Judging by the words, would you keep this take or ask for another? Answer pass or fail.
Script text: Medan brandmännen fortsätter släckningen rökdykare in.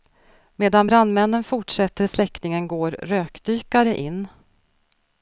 fail